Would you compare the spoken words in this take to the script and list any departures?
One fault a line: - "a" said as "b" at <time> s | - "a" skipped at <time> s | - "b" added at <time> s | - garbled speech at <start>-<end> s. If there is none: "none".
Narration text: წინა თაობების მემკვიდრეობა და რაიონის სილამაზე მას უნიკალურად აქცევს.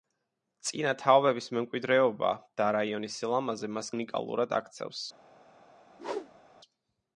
none